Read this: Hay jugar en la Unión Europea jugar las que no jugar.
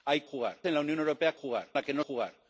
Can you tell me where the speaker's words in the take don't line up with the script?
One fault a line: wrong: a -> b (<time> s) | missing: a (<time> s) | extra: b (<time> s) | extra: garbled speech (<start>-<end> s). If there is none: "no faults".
no faults